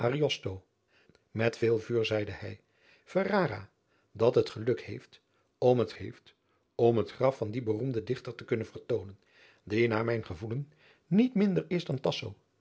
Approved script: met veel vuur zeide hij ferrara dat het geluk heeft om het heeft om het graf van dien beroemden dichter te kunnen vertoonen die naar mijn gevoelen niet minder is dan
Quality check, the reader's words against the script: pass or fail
pass